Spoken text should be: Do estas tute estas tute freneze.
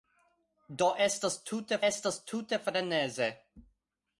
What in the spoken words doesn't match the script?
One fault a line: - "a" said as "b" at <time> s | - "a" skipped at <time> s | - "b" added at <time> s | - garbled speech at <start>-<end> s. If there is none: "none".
none